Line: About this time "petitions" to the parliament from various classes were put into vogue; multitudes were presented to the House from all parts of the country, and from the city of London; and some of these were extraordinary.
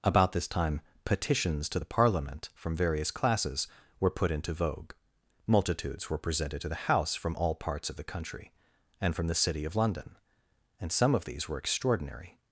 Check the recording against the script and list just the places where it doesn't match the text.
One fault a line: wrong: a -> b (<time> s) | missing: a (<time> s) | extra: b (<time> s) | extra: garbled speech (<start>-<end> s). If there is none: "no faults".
no faults